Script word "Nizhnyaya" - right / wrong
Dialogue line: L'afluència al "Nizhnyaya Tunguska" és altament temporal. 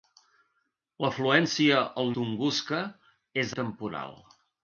wrong